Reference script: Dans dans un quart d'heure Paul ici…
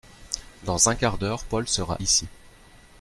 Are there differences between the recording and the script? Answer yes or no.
yes